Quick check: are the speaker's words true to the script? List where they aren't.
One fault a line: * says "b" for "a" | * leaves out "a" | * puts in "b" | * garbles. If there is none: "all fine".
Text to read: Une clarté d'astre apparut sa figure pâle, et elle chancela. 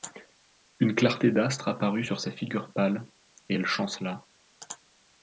* puts in "sur"